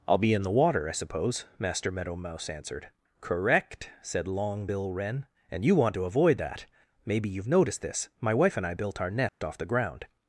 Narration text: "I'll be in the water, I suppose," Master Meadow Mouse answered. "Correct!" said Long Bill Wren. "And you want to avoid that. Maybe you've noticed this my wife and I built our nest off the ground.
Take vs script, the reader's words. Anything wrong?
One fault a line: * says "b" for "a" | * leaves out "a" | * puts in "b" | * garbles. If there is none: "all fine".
all fine